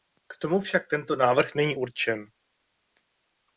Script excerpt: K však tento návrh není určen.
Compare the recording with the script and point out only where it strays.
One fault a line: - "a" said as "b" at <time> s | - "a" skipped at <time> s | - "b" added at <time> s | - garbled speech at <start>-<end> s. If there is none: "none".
- "tomu" added at 0.4 s